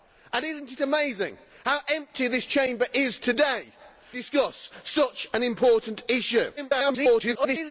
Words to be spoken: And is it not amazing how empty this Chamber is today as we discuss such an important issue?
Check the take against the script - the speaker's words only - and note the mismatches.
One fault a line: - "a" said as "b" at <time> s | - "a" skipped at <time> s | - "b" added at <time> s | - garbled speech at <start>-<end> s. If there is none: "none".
- "as we" skipped at 3.7 s
- garbled speech at 6.6-7.7 s